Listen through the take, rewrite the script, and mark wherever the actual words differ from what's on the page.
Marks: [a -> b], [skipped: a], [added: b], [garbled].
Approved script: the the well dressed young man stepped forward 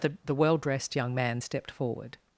the the well dressed young man stepped forward